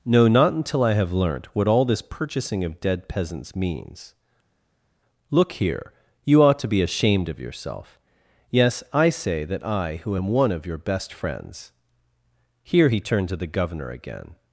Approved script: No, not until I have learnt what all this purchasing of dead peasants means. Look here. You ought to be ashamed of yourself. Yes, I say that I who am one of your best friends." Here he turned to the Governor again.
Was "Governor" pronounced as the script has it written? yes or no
yes